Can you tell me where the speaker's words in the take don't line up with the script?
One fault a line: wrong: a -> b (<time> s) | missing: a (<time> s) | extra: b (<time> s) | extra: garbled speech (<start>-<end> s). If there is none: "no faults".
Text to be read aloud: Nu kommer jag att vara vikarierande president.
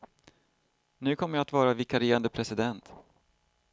no faults